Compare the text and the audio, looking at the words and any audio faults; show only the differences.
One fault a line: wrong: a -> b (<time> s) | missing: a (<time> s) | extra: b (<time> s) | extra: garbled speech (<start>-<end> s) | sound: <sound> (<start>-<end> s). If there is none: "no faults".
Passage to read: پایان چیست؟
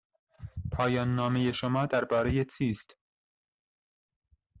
extra: نامه شما درباره (1.1 s)